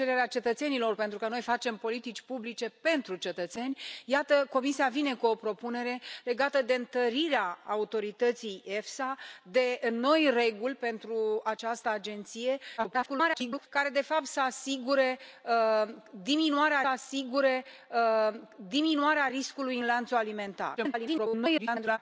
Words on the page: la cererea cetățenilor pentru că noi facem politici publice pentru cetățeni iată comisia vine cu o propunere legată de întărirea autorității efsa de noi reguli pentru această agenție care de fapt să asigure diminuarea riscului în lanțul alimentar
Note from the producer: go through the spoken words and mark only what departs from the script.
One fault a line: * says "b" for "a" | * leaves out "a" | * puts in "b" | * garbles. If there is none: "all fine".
* garbles
* puts in "asigure diminuarea"
* garbles